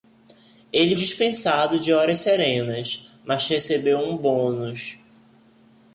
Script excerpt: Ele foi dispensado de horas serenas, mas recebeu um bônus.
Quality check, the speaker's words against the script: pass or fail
fail